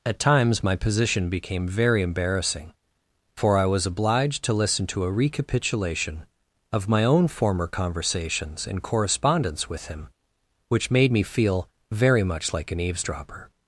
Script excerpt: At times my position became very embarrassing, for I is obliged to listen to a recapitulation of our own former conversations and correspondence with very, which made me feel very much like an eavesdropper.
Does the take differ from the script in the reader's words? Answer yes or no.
yes